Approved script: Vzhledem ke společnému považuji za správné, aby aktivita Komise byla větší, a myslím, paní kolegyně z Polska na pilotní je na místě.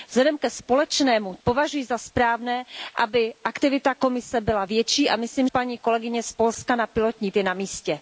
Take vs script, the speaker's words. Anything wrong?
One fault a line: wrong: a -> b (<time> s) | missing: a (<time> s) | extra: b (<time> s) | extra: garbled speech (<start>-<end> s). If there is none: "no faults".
no faults